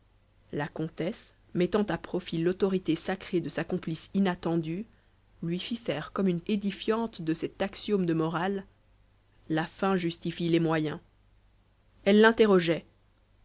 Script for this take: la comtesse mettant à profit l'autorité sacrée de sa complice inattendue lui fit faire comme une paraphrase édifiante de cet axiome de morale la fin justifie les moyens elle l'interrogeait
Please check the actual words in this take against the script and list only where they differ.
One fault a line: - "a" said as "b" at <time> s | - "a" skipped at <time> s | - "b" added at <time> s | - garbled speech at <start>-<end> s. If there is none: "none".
- "paraphrase" skipped at 6.4 s